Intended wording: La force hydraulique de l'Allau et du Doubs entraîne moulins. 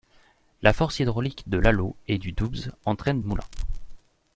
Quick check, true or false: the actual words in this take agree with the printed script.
true